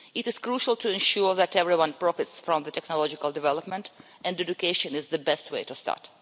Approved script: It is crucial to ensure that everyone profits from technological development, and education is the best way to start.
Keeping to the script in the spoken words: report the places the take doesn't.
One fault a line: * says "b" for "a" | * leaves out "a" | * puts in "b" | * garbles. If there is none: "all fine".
all fine